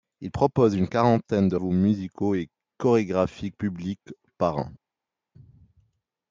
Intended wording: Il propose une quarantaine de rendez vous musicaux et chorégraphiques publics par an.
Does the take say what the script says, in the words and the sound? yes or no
no